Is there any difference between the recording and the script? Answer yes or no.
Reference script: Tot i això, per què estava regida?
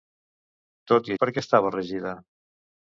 yes